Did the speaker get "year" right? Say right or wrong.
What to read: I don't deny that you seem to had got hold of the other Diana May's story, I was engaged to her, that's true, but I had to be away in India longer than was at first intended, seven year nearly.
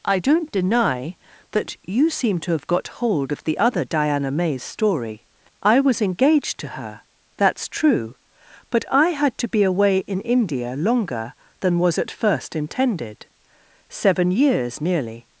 wrong